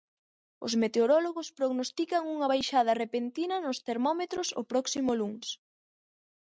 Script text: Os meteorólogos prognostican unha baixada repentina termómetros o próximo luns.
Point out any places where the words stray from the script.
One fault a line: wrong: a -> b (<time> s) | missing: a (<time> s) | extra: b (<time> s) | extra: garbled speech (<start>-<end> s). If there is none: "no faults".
extra: nos (3.6 s)